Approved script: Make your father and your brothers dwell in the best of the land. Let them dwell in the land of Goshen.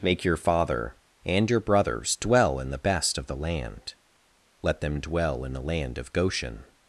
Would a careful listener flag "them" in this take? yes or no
no